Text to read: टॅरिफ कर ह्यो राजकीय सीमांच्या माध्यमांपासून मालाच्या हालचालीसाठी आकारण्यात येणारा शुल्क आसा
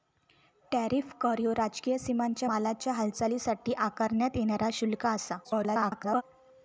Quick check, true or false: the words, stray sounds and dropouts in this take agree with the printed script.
false